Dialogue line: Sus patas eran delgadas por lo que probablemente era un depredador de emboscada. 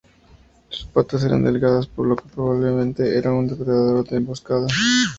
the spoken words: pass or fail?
pass